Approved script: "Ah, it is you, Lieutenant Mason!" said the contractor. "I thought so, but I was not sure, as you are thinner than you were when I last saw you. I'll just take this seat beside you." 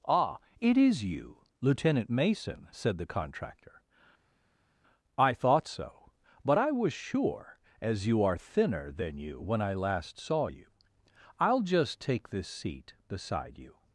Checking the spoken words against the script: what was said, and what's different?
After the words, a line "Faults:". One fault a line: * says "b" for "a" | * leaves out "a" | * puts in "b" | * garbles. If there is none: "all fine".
"Ah, it is you, Lieutenant Mason!" said the contractor. "I thought so, but I was sure, as you are thinner than you when I last saw you. I'll just take this seat beside you."
Faults:
* leaves out "not"
* leaves out "were"